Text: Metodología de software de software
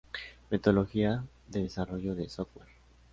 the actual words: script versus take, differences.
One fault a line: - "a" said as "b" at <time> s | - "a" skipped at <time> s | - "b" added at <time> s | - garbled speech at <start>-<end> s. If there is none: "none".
- "software" said as "desarrollo" at 1.6 s